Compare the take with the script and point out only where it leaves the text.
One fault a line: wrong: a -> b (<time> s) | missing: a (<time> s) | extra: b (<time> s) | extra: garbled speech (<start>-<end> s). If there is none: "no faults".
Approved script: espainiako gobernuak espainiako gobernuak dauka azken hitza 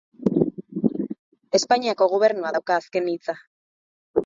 missing: espainiako gobernuak (2.6 s)